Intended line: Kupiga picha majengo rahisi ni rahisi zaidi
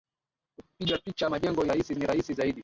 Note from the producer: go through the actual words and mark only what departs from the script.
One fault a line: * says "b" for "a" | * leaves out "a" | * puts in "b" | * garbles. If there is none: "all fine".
all fine